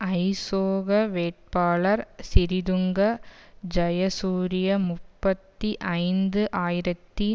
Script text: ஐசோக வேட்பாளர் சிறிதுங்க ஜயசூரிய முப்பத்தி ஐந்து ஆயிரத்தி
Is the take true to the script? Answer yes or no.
yes